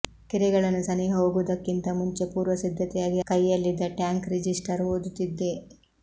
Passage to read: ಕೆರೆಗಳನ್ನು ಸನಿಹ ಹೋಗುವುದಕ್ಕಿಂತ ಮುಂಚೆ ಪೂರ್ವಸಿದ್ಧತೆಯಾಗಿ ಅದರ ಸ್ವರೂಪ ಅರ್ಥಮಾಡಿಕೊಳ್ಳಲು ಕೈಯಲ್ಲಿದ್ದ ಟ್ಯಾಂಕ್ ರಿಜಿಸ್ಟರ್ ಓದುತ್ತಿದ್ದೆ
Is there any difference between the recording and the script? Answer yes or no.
yes